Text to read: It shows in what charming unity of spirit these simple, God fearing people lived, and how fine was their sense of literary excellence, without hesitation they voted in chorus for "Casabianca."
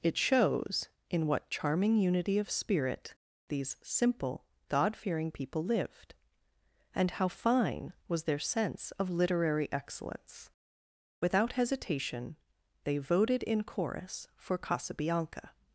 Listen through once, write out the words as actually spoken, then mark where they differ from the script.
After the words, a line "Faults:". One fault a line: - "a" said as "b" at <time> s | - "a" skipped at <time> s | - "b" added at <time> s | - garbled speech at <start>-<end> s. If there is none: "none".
It shows in what charming unity of spirit these simple, God fearing people lived, and how fine was their sense of literary excellence, without hesitation they voted in chorus for "Casabianca."
Faults:
none